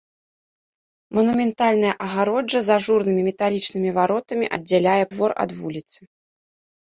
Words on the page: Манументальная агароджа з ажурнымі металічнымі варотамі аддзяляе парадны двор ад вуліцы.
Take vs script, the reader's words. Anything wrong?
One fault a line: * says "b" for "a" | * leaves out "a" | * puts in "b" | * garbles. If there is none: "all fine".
* leaves out "парадны"